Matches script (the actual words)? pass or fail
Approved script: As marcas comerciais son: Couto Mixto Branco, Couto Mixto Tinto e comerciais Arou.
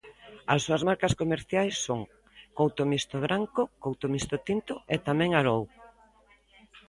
fail